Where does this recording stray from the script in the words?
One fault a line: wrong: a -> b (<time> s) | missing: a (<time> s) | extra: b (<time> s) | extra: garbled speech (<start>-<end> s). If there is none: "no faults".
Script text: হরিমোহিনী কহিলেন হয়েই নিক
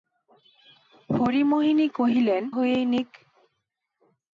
no faults